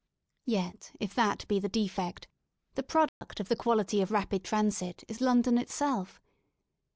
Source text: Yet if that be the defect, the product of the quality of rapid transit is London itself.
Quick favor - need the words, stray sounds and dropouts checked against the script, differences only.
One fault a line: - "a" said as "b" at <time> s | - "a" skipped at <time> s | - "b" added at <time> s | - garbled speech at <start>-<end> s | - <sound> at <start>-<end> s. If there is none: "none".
- dropout at 3.1-3.2 s